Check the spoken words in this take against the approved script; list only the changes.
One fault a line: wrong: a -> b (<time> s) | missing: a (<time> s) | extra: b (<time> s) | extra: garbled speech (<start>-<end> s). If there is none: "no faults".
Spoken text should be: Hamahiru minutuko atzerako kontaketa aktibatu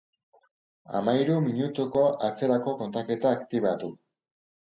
no faults